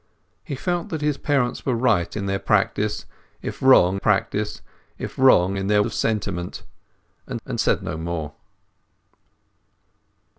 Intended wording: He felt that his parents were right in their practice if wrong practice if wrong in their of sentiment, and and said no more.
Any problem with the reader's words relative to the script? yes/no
no